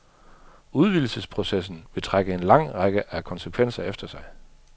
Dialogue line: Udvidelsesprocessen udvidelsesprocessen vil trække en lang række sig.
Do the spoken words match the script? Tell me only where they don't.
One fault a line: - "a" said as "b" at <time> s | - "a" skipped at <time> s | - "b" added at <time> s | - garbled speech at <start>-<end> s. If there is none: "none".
- "udvidelsesprocessen" skipped at 1.9 s
- "af konsekvenser efter" added at 3.1 s